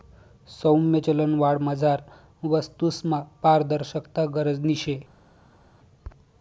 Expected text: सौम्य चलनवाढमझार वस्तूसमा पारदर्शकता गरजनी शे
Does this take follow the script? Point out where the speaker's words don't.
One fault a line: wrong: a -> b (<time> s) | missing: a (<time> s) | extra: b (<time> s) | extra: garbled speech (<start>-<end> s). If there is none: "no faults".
no faults